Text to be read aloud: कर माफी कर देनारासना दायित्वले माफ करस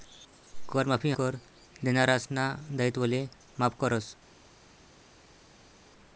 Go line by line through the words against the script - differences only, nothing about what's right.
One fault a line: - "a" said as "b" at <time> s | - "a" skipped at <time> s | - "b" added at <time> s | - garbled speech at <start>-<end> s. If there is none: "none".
none